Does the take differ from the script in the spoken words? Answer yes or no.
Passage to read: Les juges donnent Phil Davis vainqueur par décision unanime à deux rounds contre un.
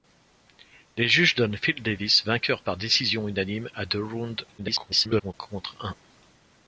yes